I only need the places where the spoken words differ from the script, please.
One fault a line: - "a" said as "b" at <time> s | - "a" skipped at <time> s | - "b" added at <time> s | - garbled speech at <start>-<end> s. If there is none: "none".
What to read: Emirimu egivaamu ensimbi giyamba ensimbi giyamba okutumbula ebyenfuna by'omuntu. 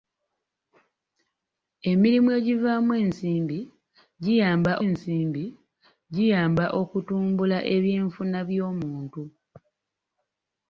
none